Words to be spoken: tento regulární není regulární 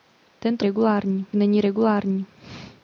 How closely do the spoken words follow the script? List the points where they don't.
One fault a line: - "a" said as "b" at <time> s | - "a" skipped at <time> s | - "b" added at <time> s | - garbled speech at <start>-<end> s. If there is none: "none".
none